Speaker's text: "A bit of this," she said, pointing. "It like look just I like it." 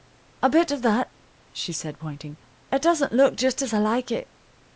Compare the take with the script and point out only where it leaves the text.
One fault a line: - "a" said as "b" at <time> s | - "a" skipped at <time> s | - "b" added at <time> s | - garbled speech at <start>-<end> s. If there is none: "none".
- "this" said as "that" at 0.8 s
- "like" said as "doesn't" at 2.8 s
- "as" added at 3.6 s